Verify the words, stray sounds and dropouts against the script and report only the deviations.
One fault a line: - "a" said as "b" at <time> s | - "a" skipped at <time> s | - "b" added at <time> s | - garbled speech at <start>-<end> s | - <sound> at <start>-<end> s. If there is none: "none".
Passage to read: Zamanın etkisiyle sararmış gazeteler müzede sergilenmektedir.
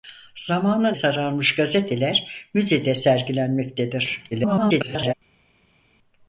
- "etkisiyle" skipped at 1.0 s
- garbled speech at 4.3-5.1 s